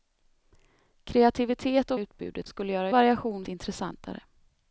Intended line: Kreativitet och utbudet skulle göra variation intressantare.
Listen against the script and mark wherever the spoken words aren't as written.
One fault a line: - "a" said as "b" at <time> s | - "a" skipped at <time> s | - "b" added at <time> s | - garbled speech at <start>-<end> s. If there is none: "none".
none